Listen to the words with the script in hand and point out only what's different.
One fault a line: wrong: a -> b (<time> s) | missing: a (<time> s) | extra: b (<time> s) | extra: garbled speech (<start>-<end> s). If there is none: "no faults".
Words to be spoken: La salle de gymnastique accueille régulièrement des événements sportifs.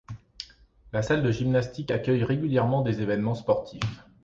no faults